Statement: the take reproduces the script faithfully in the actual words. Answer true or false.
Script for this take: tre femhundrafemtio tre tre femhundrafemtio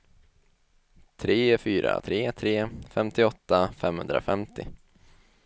false